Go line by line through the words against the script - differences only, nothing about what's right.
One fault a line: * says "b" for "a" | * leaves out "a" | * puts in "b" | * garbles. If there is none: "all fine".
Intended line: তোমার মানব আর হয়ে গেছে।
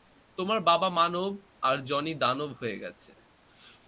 * puts in "বাবা"
* puts in "জনি দানব"